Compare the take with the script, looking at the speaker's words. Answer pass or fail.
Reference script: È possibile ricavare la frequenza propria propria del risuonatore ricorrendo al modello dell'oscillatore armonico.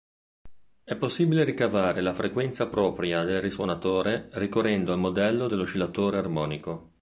fail